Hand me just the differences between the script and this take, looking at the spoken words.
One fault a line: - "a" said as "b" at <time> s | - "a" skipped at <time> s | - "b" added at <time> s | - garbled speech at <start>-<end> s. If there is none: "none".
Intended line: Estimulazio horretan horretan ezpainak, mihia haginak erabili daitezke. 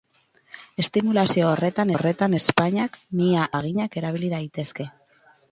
none